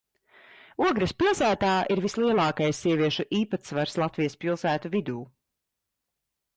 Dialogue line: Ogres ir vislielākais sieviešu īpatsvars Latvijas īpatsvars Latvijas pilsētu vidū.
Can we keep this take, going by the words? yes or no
no